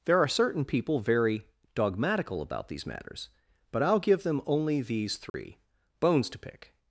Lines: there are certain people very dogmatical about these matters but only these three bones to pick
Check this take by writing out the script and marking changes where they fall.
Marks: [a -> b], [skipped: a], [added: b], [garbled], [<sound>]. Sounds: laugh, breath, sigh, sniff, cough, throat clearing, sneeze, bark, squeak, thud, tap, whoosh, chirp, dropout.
there are certain people very dogmatical about these matters but [added: i'll give them] only these three [dropout] bones to pick